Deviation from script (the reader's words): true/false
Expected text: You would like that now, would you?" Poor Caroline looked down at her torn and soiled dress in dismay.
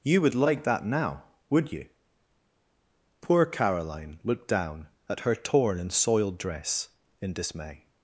false